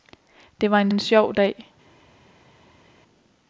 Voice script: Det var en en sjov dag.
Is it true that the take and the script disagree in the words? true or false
false